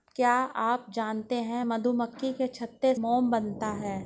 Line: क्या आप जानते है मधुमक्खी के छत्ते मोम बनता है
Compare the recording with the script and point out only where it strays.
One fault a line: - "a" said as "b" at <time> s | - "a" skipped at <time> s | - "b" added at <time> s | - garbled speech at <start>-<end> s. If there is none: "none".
none